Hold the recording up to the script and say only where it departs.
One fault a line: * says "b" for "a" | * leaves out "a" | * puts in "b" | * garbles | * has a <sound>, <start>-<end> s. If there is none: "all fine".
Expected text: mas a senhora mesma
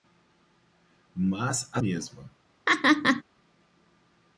* leaves out "senhora"
* has a laugh, 2.7-3.2 s